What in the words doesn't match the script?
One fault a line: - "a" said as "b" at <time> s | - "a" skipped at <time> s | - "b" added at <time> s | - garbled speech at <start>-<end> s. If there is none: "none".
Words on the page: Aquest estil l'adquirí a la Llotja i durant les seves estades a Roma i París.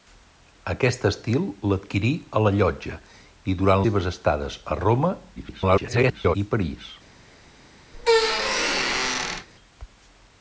- "les" skipped at 3.9 s
- garbled speech at 5.4-6.4 s